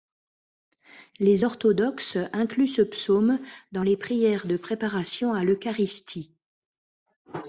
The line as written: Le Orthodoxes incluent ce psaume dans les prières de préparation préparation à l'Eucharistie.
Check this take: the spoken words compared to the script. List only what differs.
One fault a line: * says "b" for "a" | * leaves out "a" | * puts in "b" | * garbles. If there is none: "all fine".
* says "Les" for "Le"
* leaves out "préparation"